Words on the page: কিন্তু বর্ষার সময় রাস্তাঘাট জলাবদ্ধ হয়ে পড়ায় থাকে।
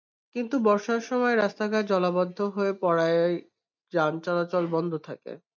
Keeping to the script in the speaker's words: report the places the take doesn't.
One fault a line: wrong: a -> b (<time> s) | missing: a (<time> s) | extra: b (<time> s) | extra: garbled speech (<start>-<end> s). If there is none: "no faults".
extra: যান চলাচল বন্ধ (3.9 s)